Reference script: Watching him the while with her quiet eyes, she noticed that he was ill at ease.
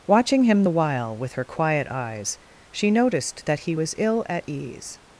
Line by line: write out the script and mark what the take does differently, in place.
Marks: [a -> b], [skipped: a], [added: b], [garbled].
Watching him the while with her quiet eyes, she noticed that he was ill at ease.